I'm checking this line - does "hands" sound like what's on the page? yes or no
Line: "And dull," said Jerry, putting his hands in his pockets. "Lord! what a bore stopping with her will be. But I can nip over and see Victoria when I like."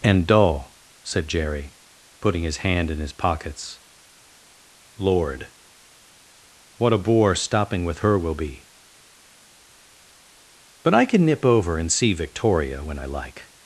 no